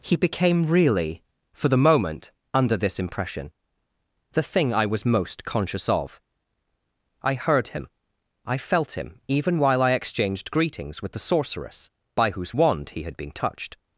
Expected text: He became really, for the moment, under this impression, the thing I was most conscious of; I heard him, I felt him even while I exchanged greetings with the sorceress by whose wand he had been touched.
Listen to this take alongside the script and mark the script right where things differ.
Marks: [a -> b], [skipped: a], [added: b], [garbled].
He became really, for the moment, under this impression, the thing I was most conscious of; I heard him, I felt him even while I exchanged greetings with the sorceress by whose wand he had been touched.